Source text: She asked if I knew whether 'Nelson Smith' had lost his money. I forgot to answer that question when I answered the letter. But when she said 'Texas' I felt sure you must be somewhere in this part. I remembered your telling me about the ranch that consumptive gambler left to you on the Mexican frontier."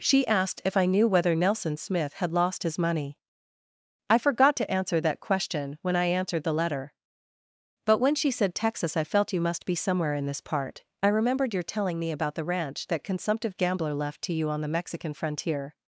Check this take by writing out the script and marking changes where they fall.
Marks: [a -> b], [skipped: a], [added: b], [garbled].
She asked if I knew whether 'Nelson Smith' had lost his money. I forgot to answer that question when I answered the letter. But when she said 'Texas' I felt [skipped: sure] you must be somewhere in this part. I remembered your telling me about the ranch that consumptive gambler left to you on the Mexican frontier."